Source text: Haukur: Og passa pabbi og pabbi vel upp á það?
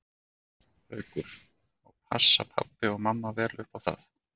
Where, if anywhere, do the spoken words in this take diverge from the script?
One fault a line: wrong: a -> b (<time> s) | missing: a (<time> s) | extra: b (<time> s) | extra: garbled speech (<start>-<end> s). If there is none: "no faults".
wrong: pabbi -> mamma (3.1 s)